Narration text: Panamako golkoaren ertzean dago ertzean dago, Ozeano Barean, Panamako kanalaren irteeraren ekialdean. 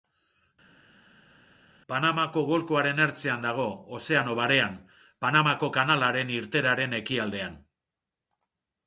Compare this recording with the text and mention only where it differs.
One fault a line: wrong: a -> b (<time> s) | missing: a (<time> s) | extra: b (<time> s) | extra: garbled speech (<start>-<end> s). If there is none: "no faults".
missing: ertzean dago (3.7 s)